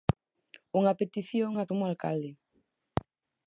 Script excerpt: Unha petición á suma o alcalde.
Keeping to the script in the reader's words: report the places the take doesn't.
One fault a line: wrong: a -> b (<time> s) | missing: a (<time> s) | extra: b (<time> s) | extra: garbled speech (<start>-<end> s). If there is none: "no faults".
no faults